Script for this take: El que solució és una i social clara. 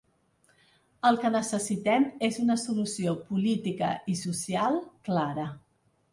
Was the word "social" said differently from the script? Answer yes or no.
no